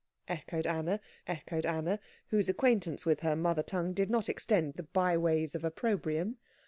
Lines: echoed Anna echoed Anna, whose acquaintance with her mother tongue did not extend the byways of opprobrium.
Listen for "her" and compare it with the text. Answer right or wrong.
right